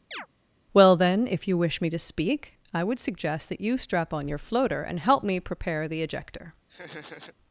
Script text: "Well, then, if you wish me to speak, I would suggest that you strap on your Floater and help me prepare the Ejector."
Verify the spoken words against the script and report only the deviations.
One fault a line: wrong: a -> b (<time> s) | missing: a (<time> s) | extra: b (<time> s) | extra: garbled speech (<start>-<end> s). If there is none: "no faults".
no faults